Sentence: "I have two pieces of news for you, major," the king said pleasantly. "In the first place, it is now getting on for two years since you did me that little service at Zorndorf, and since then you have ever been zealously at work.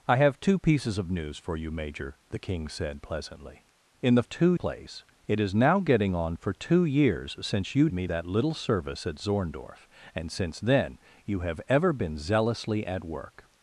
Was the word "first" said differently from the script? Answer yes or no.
yes